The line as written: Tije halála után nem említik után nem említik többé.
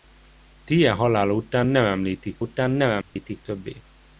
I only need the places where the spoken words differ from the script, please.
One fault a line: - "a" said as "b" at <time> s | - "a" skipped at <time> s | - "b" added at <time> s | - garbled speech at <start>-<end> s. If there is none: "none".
none